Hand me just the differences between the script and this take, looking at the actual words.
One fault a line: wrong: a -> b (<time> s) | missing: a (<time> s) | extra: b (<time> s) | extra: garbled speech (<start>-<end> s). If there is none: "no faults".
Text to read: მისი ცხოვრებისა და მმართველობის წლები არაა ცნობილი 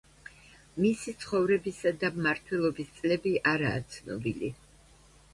no faults